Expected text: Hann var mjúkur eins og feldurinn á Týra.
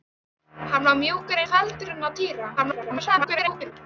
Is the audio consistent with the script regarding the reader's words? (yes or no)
no